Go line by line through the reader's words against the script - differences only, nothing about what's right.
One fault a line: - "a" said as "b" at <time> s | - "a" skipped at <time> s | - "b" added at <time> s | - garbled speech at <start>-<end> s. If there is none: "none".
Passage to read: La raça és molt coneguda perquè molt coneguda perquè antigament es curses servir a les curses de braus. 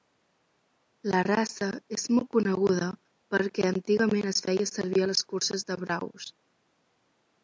- "molt coneguda perquè" skipped at 3.7 s
- "curses" said as "feia" at 4.5 s